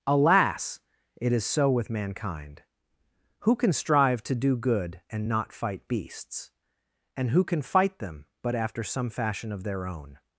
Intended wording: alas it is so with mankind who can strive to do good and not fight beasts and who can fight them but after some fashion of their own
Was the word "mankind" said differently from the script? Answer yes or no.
no